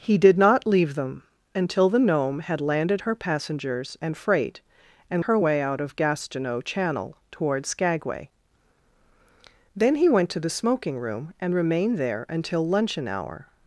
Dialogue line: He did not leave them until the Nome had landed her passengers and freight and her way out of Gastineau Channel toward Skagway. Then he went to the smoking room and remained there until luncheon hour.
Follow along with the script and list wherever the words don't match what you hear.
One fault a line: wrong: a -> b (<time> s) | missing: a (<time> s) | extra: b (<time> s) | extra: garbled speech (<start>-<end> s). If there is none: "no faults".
no faults